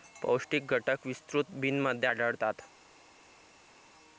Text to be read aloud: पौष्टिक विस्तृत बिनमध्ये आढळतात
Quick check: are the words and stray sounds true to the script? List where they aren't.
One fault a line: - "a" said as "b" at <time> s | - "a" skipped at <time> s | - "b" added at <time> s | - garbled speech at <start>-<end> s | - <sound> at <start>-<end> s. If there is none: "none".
- "घटक" added at 0.7 s